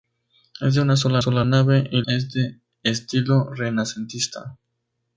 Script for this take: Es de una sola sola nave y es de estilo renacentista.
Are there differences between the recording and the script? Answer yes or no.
no